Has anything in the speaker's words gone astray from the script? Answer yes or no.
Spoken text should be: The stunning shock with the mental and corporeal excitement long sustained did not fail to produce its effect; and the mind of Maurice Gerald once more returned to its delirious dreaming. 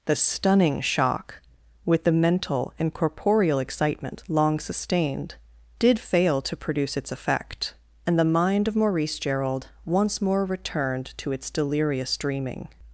yes